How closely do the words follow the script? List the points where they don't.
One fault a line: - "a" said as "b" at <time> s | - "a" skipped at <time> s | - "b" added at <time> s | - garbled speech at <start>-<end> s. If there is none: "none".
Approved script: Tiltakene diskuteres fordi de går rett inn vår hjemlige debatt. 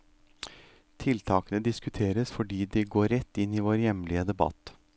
- "i" added at 3.5 s